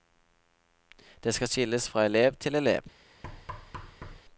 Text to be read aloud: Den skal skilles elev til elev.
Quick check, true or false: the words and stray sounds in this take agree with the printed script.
false